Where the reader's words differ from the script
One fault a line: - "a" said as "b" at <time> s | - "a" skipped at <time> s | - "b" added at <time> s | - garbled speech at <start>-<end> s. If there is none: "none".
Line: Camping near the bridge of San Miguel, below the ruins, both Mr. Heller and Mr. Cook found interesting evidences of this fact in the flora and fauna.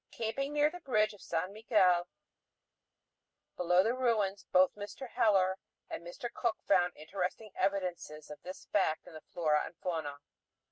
none